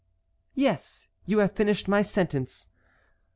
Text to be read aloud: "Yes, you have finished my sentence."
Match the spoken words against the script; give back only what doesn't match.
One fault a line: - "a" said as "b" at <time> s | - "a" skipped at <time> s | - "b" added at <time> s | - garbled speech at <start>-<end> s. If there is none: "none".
none